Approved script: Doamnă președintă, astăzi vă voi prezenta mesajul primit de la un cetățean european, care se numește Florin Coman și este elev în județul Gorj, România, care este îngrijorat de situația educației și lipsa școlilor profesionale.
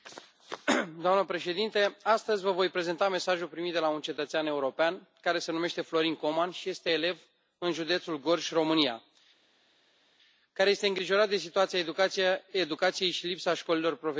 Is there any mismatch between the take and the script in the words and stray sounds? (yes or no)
no